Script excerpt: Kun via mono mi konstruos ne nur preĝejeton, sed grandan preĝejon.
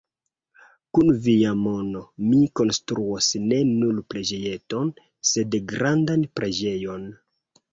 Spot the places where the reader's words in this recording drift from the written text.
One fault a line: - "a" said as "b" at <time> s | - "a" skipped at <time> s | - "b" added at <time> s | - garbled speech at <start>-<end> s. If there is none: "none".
none